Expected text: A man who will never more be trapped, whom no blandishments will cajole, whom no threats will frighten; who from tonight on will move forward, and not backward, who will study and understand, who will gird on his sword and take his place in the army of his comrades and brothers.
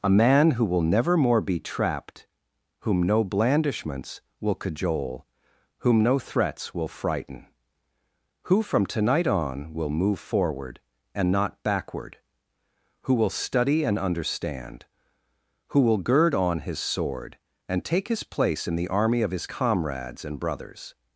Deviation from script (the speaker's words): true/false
false